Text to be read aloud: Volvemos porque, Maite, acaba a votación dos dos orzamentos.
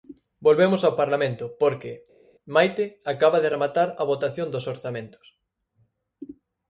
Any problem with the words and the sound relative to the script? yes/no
yes